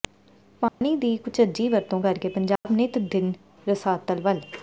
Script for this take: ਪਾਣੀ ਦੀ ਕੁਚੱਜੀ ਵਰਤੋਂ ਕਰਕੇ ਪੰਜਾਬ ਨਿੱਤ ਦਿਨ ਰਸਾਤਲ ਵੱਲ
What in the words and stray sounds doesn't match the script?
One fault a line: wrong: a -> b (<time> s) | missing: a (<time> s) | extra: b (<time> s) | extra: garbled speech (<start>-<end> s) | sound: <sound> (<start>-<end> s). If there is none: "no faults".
sound: dropout (0.7-0.8 s)
sound: dropout (2.6-2.7 s)